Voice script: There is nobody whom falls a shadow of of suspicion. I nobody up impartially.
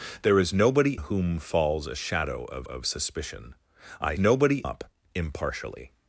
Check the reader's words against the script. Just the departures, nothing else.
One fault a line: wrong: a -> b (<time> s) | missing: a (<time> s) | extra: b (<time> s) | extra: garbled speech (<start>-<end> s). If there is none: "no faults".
no faults